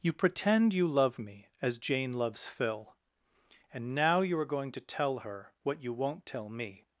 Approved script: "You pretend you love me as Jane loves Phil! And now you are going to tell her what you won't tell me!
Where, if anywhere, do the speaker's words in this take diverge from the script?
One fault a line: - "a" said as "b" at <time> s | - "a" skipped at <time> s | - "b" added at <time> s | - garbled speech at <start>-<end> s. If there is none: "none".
none